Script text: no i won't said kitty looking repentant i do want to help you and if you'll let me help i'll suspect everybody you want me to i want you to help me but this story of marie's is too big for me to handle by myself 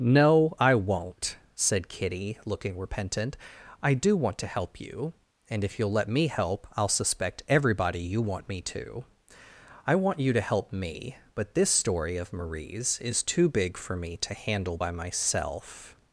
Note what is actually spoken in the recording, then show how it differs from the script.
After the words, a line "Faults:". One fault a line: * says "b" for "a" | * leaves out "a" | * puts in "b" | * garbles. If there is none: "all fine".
no i won't said kitty looking repentant i do want to help you and if you'll let me help i'll suspect everybody you want me to i want you to help me but this story of marie's is too big for me to handle by myself
Faults:
all fine